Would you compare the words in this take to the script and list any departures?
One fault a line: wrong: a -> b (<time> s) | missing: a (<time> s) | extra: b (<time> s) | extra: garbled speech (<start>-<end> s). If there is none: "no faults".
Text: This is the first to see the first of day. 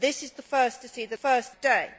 no faults